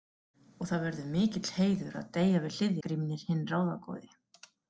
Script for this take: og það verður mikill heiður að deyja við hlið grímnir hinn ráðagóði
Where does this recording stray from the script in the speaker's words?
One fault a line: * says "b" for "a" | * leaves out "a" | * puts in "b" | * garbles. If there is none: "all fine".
all fine